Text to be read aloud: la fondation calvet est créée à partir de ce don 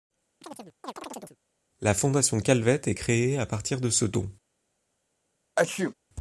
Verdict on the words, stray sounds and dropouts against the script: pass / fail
fail